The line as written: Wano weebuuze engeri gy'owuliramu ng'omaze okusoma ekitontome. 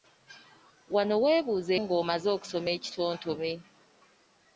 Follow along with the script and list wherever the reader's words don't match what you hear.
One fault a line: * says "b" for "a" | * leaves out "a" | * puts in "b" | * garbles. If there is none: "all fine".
* leaves out "engeri gy'owuliramu"